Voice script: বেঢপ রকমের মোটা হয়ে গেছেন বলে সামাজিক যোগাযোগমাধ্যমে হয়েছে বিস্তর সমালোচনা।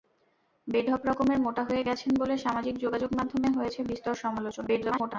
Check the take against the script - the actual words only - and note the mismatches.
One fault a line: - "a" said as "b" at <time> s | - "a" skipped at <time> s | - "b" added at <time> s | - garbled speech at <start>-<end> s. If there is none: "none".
- garbled speech at 4.7-5.2 s